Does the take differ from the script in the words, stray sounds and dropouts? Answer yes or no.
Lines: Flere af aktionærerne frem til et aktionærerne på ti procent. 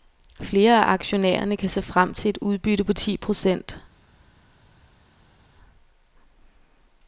yes